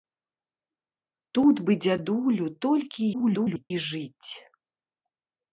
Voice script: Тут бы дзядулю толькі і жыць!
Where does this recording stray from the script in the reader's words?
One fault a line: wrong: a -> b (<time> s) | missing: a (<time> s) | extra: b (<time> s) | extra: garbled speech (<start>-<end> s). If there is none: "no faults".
extra: garbled speech (3.1-3.7 s)